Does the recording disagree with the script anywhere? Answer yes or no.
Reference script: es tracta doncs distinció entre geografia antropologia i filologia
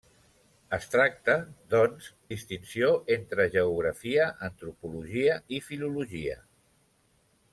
no